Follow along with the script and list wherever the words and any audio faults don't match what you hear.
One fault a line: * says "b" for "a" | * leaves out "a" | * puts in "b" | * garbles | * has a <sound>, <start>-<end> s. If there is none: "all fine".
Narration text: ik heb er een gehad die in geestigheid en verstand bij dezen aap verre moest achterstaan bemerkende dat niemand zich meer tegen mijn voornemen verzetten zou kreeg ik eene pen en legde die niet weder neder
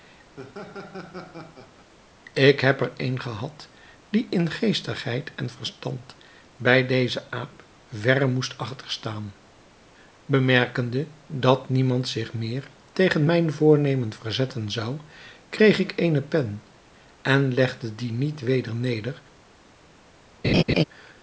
* has a laugh, 0.4-1.9 s
* has a laugh, 20.4-20.8 s